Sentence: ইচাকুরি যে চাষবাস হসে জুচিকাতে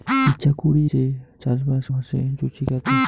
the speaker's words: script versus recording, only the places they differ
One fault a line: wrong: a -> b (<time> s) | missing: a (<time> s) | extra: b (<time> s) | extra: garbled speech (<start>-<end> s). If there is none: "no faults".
no faults